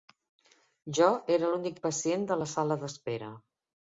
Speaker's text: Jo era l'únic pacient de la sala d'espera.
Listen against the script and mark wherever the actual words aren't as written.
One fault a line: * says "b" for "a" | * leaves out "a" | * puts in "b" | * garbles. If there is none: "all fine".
all fine